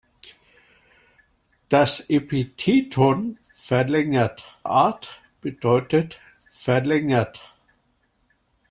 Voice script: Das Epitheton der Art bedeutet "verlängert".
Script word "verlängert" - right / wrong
right